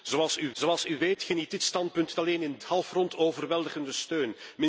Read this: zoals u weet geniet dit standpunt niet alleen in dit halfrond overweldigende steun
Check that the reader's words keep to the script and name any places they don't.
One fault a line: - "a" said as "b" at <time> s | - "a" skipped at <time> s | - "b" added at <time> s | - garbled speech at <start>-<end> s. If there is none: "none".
- "zoals u" added at 0.5 s
- "niet" skipped at 2.1 s
- "dit" skipped at 2.6 s